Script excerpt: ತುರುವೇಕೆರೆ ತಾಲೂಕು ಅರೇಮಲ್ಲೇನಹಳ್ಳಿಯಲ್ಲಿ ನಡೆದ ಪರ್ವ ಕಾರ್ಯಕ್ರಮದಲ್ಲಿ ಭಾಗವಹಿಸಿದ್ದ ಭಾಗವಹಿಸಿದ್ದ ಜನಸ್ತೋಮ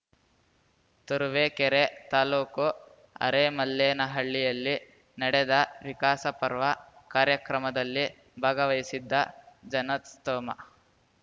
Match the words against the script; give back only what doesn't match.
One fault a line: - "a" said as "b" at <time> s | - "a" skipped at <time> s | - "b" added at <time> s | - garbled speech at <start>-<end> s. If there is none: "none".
- "ವಿಕಾಸ" added at 5.8 s
- "ಭಾಗವಹಿಸಿದ್ದ" skipped at 9.1 s